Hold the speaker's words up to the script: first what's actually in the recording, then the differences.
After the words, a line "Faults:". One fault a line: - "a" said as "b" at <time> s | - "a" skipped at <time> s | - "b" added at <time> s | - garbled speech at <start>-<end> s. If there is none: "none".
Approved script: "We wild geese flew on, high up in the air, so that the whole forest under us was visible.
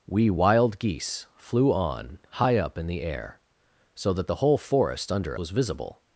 "We wild geese flew on, high up in the air, so that the whole forest under was visible.
Faults:
- "us" skipped at 5.4 s